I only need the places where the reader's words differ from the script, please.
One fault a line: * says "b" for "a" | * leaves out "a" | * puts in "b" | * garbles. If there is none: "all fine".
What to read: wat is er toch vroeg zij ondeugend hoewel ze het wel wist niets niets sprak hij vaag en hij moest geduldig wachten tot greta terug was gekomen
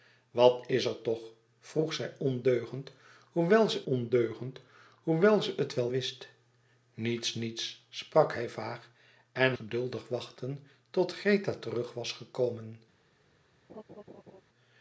* puts in "ondeugend hoewel ze"
* leaves out "hij moest"